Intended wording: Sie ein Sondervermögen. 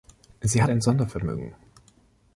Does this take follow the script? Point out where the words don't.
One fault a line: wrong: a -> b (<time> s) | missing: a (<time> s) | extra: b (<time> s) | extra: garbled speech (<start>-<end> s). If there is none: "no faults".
no faults